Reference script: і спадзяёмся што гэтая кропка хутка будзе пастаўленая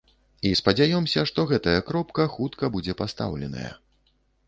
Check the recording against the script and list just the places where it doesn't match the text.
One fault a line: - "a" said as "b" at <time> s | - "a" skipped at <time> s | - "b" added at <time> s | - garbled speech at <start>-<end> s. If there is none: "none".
none